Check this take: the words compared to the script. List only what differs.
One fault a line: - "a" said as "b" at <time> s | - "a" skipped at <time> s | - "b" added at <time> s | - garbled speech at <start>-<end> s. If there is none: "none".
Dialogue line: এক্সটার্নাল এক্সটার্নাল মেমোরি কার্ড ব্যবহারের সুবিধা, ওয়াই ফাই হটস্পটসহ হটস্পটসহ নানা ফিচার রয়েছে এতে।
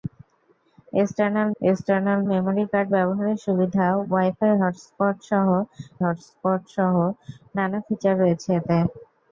none